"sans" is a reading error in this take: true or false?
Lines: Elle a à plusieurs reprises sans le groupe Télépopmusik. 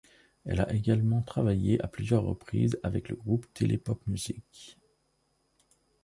true